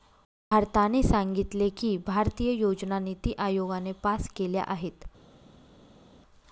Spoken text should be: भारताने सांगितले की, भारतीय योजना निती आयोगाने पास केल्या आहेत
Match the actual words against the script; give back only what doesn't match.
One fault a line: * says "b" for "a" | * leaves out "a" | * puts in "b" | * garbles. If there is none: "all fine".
all fine